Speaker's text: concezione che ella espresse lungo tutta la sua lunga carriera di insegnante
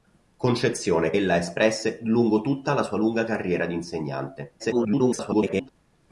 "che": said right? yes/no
no